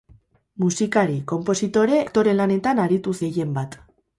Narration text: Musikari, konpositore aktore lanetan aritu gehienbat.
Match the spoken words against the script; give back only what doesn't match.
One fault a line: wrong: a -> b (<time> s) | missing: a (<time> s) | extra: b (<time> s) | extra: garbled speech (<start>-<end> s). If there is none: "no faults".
no faults